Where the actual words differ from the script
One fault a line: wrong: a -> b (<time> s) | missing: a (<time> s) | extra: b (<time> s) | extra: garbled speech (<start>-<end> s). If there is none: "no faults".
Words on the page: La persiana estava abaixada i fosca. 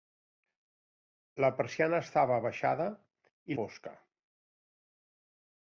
no faults